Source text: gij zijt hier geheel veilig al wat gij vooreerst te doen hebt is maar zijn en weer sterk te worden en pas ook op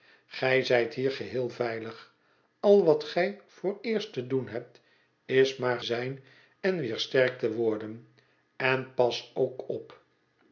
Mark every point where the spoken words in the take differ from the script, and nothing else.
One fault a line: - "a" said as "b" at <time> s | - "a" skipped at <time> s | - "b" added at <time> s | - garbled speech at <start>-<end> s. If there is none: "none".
none